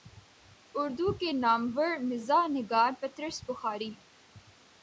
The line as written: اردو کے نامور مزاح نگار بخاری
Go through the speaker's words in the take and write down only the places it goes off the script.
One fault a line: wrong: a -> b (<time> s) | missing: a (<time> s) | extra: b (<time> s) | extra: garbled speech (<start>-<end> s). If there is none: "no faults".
extra: پطرس (3.0 s)